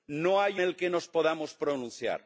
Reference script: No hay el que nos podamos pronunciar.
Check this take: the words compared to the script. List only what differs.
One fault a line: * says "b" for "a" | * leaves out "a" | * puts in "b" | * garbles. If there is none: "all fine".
all fine